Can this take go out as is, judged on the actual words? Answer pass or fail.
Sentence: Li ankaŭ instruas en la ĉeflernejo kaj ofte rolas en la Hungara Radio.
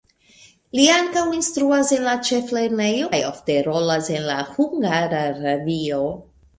pass